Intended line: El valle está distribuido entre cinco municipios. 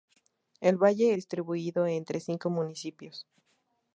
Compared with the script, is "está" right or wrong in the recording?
wrong